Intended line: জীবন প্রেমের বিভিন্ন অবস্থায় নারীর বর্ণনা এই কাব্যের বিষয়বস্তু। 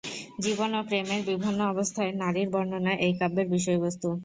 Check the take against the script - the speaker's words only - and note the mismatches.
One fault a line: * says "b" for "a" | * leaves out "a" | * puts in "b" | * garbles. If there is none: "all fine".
* puts in "ও"